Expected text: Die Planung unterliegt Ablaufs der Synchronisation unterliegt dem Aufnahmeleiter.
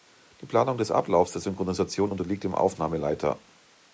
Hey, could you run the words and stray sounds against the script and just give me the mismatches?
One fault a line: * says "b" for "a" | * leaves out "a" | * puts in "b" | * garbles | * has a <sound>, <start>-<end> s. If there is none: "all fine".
* says "des" for "unterliegt"